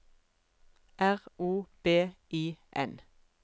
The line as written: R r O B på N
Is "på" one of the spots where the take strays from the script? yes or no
yes